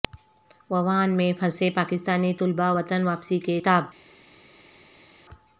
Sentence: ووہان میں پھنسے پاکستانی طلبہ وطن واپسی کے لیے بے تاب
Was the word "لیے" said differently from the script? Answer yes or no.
yes